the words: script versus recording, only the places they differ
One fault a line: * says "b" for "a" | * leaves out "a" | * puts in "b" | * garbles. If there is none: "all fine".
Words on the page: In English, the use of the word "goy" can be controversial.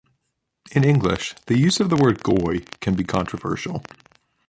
all fine